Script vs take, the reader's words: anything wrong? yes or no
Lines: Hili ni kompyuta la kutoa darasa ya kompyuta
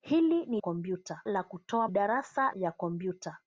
no